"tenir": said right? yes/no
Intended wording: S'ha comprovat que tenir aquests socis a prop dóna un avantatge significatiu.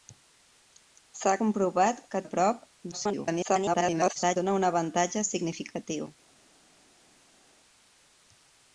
no